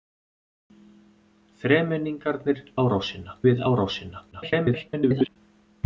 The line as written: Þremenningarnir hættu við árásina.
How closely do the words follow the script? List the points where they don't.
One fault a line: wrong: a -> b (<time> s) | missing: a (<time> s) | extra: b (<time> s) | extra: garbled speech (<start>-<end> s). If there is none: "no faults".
wrong: hættu -> árásina (2.8 s)
extra: garbled speech (4.3-5.4 s)